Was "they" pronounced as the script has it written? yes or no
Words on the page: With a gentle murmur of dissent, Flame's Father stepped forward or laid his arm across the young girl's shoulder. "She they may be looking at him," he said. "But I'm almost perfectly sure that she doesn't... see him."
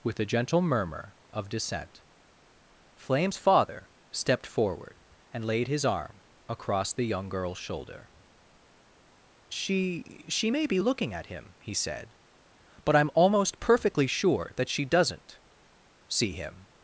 no